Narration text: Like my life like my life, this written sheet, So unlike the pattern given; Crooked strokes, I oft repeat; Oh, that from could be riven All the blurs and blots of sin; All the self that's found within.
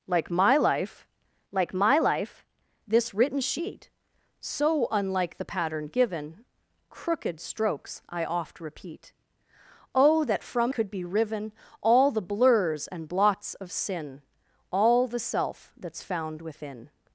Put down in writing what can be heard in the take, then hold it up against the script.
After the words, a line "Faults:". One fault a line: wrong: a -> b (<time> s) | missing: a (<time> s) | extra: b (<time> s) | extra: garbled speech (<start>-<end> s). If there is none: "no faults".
Like my life like my life, this written sheet, So unlike the pattern given; Crooked strokes, I oft repeat; Oh, that from could be riven All the blurs and blots of sin; All the self that's found within.
Faults:
no faults